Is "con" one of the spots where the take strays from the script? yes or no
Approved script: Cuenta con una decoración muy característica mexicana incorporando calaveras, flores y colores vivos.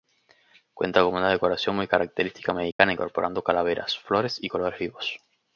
no